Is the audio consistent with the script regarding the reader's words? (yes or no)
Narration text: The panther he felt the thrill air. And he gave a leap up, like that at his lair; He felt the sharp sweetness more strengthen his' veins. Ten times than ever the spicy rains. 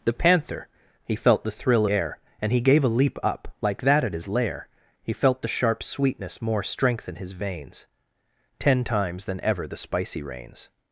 yes